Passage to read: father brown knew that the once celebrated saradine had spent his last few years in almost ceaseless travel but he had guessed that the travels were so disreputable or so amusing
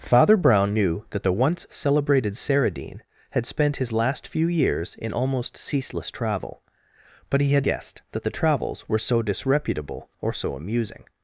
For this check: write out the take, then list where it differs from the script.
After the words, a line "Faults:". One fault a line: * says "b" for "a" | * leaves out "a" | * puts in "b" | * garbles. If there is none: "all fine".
father brown knew that the once celebrated saradine had spent his last few years in almost ceaseless travel but he had guessed that the travels were so disreputable or so amusing
Faults:
all fine